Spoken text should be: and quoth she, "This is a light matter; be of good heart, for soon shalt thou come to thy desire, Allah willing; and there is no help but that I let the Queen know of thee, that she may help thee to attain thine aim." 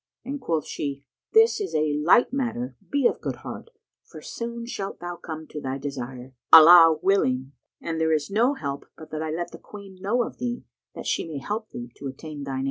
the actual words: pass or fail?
pass